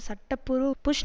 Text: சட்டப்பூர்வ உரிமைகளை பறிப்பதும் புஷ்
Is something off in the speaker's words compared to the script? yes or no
yes